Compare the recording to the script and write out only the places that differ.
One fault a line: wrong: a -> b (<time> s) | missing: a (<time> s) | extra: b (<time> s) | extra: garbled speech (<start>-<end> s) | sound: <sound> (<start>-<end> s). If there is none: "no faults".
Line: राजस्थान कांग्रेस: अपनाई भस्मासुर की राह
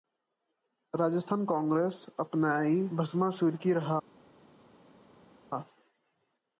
no faults